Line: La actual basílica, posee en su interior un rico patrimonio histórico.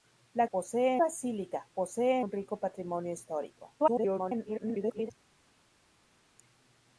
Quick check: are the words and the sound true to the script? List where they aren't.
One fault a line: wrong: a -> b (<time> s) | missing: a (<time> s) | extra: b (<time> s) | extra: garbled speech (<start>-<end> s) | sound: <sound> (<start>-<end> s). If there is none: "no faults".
wrong: actual -> posee (0.5 s)
missing: en su interior (2.2 s)
extra: garbled speech (3.8-5.1 s)